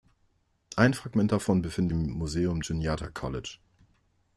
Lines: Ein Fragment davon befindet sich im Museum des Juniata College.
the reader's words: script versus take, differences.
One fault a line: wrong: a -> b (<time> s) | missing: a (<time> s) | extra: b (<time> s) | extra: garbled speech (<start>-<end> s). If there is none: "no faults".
missing: sich (1.9 s)
missing: des (2.6 s)